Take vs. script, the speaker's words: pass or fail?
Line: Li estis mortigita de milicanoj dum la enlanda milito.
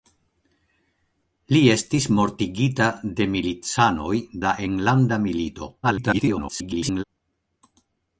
fail